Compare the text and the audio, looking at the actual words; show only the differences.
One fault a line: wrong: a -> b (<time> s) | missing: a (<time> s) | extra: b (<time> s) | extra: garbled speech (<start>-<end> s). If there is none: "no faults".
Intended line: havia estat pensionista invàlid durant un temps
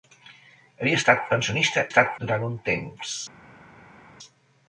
wrong: invàlid -> estat (1.9 s)